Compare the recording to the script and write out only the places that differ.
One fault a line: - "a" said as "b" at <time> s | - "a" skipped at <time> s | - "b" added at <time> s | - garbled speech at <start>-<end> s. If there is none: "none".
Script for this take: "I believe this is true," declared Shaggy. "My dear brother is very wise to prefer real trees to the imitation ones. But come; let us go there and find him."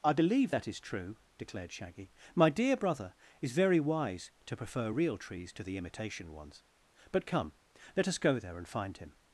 - "this" said as "that" at 0.5 s